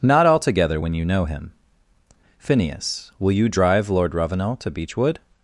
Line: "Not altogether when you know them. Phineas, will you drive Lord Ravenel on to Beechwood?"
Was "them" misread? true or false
true